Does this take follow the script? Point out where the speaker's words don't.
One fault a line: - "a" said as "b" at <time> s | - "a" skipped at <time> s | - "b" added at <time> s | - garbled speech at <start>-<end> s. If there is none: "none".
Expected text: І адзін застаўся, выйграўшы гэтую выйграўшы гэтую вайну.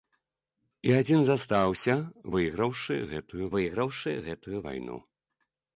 none